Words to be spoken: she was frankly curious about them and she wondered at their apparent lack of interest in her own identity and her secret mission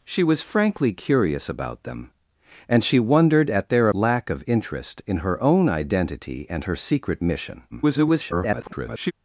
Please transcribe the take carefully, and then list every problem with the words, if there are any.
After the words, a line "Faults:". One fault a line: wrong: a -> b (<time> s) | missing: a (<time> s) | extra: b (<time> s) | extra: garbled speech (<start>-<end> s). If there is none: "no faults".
she was frankly curious about them and she wondered at their lack of interest in her own identity and her secret mission [garbled]
Faults:
missing: apparent (3.9 s)
extra: garbled speech (7.7-9.1 s)